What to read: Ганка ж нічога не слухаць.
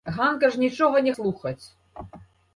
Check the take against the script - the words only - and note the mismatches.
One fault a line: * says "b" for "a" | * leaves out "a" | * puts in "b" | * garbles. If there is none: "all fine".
all fine